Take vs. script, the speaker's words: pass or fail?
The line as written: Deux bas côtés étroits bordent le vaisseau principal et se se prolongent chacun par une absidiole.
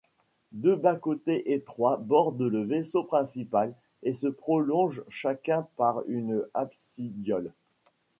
fail